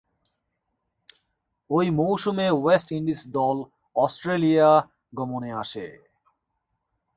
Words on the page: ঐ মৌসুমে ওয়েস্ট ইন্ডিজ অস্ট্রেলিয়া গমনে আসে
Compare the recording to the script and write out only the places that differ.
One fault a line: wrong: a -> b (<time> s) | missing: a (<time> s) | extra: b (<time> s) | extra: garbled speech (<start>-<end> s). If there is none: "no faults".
extra: দল (3.4 s)